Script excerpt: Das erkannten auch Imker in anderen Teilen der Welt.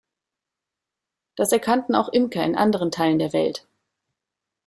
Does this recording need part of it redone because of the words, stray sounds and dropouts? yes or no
no